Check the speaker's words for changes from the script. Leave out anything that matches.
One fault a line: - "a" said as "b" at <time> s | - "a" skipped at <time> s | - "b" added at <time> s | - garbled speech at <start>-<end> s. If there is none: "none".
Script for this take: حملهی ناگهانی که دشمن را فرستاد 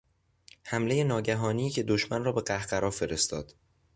- "به قهقرا" added at 2.3 s